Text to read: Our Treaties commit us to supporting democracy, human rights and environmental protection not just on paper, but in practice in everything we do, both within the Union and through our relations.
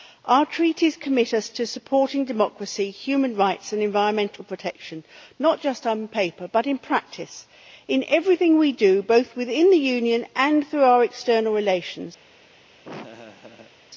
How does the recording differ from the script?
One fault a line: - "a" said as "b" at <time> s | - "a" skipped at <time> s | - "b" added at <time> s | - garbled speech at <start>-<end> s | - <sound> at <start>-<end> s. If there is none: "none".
- "external" added at 11.0 s
- laugh at 12.8-13.7 s